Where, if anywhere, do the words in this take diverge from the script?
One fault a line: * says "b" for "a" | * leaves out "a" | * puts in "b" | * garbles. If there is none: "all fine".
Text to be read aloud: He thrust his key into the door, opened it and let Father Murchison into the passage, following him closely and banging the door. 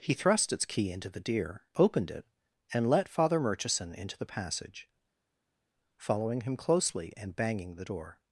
* says "its" for "his"
* says "deer" for "door"